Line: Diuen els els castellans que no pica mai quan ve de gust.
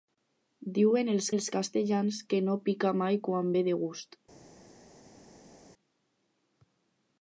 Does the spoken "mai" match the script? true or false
true